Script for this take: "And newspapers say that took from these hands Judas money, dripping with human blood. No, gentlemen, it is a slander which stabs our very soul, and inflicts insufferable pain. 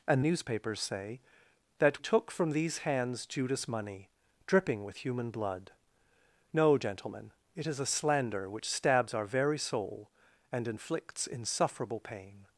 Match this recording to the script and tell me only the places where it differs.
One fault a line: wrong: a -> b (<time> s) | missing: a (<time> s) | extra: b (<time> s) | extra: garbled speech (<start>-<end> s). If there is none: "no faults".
no faults